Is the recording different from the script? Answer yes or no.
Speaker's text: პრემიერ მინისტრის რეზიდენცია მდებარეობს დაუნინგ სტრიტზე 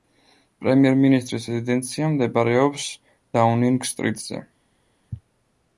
no